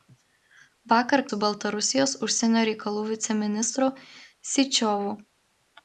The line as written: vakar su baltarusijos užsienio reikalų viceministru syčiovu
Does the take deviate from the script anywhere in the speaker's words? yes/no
no